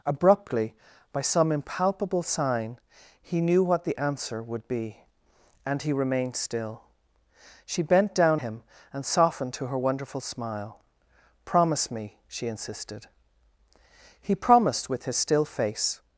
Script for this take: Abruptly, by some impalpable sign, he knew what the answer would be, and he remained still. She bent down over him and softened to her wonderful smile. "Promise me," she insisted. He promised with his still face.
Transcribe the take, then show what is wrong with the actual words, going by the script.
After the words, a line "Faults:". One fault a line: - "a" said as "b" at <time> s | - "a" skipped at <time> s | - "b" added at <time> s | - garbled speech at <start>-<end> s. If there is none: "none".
Abruptly, by some impalpable sign, he knew what the answer would be, and he remained still. She bent down him and softened to her wonderful smile. "Promise me," she insisted. He promised with his still face.
Faults:
- "over" skipped at 8.4 s